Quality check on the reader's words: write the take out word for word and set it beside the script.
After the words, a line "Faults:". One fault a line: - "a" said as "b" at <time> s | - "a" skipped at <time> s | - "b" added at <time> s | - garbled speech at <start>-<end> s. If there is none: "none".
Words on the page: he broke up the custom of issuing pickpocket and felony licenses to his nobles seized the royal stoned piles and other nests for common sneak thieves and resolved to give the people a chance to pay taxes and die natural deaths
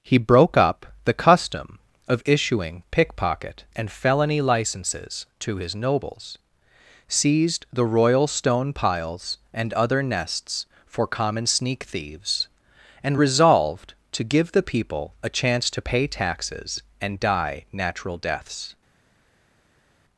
he broke up the custom of issuing pickpocket and felony licenses to his nobles seized the royal stone piles and other nests for common sneak thieves and resolved to give the people a chance to pay taxes and die natural deaths
Faults:
- "stoned" said as "stone" at 8.3 s